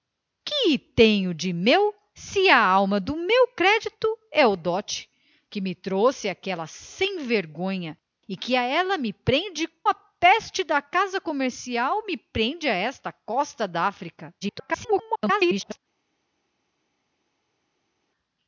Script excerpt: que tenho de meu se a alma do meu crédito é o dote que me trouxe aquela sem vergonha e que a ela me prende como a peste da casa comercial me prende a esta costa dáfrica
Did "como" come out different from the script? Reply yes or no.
yes